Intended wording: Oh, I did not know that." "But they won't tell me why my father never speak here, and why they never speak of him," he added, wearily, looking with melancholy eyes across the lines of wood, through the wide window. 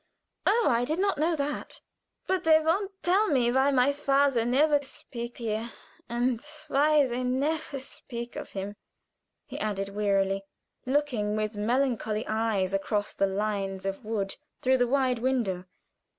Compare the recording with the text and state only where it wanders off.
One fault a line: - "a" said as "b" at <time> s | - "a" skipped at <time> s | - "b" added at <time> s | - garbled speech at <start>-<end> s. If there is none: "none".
none